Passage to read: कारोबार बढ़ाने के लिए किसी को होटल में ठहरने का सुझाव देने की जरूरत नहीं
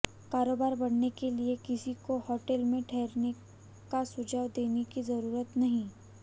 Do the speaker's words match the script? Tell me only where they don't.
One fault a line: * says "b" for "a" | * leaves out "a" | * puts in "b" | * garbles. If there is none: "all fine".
all fine